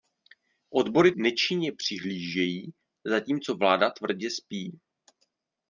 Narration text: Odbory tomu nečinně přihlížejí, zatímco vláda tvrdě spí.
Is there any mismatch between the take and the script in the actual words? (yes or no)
yes